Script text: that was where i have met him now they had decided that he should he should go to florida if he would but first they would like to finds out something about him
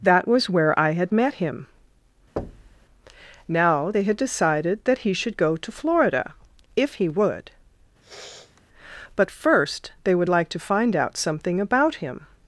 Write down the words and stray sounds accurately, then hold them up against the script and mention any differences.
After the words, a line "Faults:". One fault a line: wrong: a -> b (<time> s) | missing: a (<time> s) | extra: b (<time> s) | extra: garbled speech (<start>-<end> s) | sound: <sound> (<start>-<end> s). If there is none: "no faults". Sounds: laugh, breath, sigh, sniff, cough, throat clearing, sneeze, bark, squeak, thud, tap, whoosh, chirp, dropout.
that was where i had met him now they had decided that he should go to florida if he would but first they would like to find out something about him
Faults:
wrong: have -> had (0.9 s)
sound: thud (2.4-2.9 s)
missing: he should (5.4 s)
sound: sniff (8.0-8.6 s)
wrong: finds -> find (10.6 s)